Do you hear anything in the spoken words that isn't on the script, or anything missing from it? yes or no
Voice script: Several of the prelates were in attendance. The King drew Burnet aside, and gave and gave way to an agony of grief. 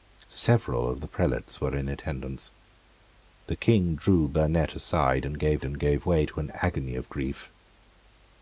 no